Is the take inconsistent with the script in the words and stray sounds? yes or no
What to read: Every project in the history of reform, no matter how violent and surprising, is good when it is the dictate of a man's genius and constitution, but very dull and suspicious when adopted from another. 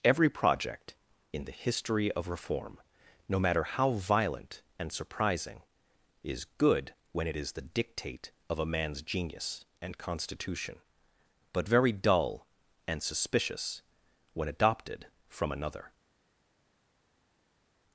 no